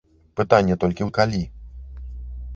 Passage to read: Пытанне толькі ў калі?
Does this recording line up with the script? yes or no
yes